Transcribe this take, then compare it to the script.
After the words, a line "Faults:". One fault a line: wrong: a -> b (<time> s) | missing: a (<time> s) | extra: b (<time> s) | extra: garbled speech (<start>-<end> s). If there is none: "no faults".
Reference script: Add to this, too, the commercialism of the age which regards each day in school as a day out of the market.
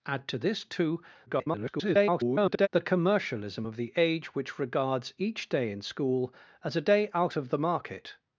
Add to this, too, [garbled] the commercialism of the age which regards each day in school as a day out of the market.
Faults:
extra: garbled speech (1.3-2.7 s)